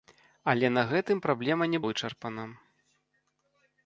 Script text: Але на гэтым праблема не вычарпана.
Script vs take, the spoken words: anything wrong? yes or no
no